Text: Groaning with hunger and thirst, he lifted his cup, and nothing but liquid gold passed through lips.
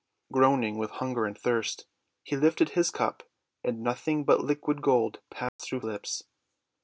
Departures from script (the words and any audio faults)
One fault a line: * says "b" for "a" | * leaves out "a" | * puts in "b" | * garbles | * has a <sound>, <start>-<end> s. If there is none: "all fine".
* has a dropout, 5.5-5.6 s